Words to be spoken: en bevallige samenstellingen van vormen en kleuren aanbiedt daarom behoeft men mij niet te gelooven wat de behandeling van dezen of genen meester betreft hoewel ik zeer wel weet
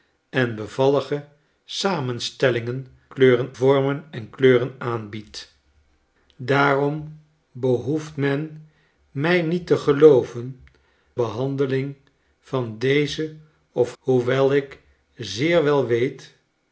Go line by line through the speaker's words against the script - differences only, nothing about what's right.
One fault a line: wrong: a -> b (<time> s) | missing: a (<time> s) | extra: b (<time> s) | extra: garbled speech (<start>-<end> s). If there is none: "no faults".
wrong: van -> kleuren (3.1 s)
missing: wat de (10.6 s)
missing: genen meester betreft (13.9 s)